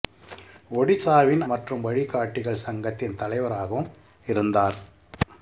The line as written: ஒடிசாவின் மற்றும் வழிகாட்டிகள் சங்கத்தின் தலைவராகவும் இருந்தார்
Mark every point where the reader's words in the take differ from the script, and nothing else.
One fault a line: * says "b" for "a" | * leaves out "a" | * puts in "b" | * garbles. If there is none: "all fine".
all fine